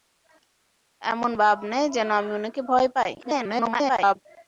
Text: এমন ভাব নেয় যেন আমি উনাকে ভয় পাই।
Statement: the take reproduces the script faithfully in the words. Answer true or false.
false